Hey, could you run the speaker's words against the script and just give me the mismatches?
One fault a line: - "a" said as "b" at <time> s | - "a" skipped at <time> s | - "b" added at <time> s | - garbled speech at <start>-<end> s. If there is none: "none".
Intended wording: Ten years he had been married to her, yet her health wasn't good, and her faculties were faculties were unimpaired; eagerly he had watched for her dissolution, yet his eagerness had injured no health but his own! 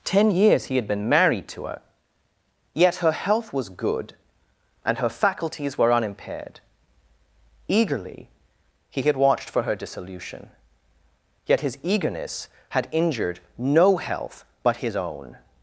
- "wasn't" said as "was" at 3.5 s
- "faculties were" skipped at 5.9 s